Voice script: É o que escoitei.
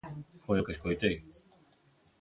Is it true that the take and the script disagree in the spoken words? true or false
true